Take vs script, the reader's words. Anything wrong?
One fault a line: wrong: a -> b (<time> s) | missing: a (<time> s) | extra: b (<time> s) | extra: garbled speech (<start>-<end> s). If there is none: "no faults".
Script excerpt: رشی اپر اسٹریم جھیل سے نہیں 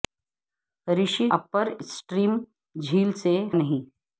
no faults